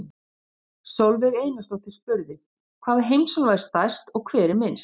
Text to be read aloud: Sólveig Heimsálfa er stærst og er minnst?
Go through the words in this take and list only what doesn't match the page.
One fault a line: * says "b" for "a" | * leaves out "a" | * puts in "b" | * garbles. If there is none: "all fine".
* puts in "Einarsdóttir spurði Hvaða"
* puts in "hver"